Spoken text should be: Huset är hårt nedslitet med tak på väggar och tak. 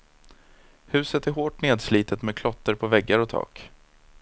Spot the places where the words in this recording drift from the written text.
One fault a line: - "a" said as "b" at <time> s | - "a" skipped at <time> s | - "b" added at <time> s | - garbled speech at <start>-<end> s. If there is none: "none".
- "tak" said as "klotter" at 2.3 s